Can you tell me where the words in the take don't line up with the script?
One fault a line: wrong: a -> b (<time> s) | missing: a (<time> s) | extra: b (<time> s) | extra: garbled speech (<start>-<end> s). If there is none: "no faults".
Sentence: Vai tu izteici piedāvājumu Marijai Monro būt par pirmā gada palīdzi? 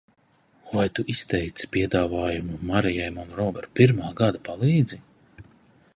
missing: būt (3.5 s)